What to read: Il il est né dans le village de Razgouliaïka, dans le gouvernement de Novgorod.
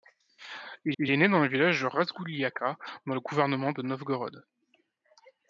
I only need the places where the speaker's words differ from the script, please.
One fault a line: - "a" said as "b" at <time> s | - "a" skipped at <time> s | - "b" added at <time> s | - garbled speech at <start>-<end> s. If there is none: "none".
none